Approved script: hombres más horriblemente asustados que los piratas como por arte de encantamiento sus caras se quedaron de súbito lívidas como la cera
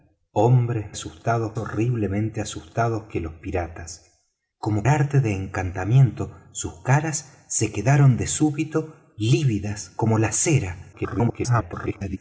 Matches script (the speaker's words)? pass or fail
fail